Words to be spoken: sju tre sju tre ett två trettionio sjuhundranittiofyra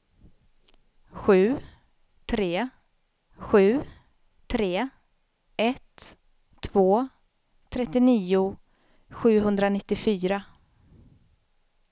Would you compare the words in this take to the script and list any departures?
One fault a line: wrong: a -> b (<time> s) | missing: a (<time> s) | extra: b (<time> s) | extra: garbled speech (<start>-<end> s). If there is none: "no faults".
no faults